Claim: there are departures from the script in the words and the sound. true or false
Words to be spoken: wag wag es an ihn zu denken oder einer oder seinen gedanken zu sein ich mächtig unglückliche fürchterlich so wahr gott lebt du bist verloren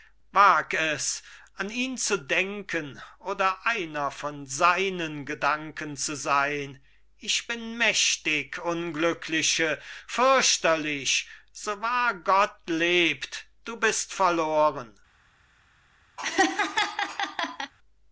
true